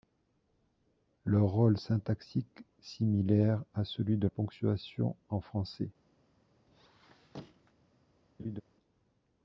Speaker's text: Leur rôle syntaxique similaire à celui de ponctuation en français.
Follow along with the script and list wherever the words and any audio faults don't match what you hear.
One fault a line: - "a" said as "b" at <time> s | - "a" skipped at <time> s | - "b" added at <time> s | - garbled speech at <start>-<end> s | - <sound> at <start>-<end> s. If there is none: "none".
- squeak at 6.7-7.7 s
- laugh at 8.4-8.6 s